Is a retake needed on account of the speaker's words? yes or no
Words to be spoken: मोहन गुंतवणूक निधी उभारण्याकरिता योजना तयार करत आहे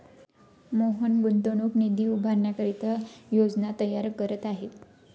no